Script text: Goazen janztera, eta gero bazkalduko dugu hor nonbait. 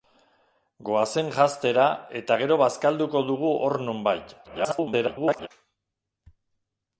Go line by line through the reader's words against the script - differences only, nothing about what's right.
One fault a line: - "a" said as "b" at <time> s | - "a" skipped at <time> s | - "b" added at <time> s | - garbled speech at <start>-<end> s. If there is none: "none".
- garbled speech at 4.4-5.5 s